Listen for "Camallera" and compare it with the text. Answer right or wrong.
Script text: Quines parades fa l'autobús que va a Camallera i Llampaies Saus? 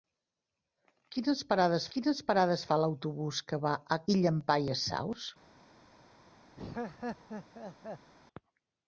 wrong